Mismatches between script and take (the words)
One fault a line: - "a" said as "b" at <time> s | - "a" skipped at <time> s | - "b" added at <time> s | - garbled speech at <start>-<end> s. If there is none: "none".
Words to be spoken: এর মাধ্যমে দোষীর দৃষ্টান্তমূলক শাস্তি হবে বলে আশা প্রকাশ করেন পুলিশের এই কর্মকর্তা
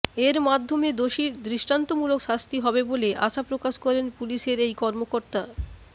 none